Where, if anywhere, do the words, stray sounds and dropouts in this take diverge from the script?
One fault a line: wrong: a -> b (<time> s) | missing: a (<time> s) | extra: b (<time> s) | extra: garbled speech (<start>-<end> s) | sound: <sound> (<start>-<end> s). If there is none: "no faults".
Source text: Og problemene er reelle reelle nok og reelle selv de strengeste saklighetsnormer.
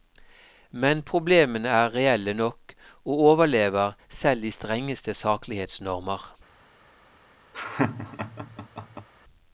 wrong: Og -> Men (0.8 s)
missing: reelle (2.3 s)
wrong: reelle -> overlever (3.3 s)
sound: laugh (7.5-9.1 s)